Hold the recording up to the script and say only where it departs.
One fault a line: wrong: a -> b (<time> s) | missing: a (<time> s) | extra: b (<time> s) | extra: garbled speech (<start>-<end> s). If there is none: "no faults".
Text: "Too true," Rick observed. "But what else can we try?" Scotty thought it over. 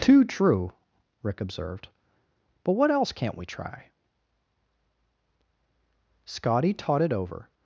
wrong: can -> can't (3.1 s)
wrong: thought -> taught (6.7 s)